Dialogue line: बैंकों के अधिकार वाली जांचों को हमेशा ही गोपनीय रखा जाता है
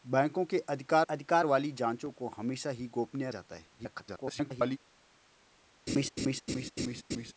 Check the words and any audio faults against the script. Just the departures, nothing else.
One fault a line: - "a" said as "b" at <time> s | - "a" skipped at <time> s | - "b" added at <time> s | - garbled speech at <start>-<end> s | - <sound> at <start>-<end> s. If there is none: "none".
- "अधिकार" added at 1.0 s
- "रखा" skipped at 3.3 s
- garbled speech at 3.8-4.8 s
- laugh at 5.9-7.3 s